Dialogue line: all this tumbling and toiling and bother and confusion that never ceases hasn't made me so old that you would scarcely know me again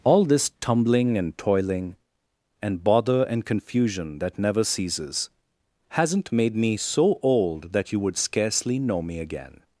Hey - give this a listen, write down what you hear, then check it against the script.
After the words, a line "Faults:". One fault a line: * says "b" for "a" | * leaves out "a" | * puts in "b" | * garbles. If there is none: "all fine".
all this tumbling and toiling and bother and confusion that never ceases hasn't made me so old that you would scarcely know me again
Faults:
all fine